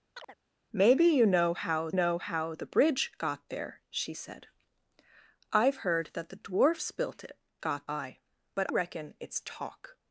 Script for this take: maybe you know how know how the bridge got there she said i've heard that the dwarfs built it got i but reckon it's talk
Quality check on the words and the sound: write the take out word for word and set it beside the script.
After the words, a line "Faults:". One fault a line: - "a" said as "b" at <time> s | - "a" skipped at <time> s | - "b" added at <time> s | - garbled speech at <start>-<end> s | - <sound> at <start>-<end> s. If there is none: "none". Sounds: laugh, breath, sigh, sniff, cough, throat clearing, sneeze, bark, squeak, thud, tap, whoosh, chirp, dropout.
maybe you know how know how the bridge got there she said i've heard that the dwarfs built it got i but reckon it's talk
Faults:
- chirp at 0.1-0.4 s